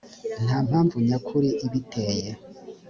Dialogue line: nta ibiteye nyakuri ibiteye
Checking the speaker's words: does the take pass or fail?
fail